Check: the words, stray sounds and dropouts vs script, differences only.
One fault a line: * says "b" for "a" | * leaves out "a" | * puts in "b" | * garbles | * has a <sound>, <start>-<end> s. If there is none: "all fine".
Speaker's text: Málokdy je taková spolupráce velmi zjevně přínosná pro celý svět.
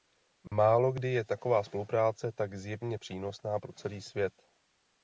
* has a dropout, 0.5-0.5 s
* says "tak" for "velmi"